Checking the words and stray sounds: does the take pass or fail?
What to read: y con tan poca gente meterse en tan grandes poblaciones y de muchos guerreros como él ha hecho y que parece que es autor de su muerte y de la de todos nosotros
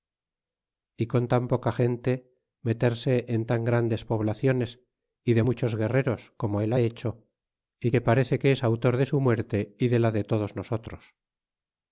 pass